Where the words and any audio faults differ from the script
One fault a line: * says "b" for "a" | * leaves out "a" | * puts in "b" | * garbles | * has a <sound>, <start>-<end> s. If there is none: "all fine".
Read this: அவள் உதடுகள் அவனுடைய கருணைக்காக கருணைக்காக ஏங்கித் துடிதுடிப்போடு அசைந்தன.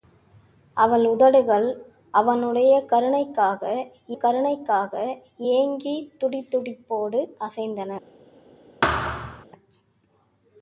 * has a thud, 8.8-9.5 s